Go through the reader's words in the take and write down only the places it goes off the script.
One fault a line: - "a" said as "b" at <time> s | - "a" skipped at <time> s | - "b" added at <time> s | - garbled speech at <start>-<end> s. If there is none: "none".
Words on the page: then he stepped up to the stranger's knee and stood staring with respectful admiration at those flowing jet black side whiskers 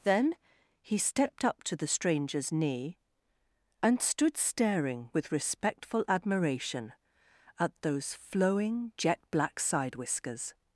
none